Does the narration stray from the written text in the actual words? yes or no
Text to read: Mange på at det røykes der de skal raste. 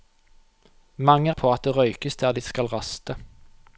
no